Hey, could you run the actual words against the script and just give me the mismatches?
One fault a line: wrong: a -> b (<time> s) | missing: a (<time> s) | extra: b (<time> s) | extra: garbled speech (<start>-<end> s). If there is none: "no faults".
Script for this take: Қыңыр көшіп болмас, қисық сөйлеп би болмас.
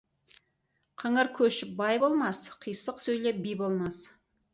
extra: бай (1.8 s)